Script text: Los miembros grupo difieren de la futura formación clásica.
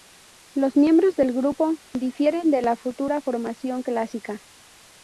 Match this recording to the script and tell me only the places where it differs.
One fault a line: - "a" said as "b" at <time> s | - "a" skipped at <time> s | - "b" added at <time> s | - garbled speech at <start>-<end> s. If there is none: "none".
- "del" added at 1.1 s